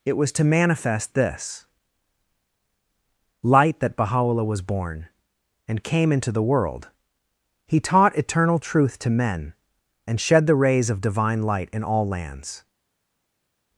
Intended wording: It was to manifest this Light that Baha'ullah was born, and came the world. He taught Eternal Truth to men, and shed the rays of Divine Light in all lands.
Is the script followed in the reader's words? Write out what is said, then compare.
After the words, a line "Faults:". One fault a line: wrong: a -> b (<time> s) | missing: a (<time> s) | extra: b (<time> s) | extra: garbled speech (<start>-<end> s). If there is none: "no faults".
It was to manifest this Light that Baha'ullah was born, and came into the world. He taught Eternal Truth to men, and shed the rays of Divine Light in all lands.
Faults:
extra: into (6.1 s)